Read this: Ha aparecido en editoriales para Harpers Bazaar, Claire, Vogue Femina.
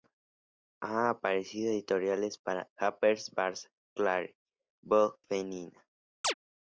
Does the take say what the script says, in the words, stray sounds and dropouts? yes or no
no